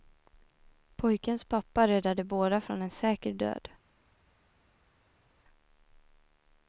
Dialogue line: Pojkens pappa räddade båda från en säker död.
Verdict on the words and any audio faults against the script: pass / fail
pass